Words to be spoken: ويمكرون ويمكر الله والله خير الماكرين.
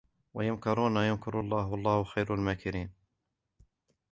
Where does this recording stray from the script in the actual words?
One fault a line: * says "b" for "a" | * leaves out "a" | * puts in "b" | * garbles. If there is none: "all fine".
all fine